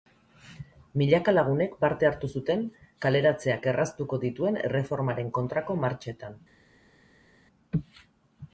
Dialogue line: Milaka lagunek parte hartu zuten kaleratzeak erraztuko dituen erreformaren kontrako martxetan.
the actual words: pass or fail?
pass